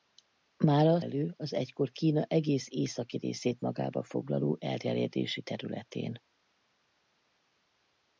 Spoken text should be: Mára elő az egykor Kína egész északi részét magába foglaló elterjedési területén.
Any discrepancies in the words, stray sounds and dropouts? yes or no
no